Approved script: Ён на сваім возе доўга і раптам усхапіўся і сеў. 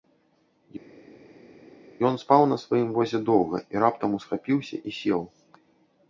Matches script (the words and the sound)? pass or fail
fail